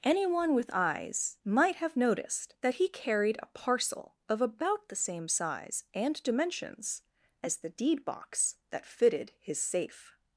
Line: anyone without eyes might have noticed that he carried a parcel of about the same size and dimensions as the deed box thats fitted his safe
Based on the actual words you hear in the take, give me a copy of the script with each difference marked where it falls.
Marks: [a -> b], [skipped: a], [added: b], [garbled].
anyone [without -> with] eyes might have noticed that he carried a parcel of about the same size and dimensions as the deed box [thats -> that] fitted his safe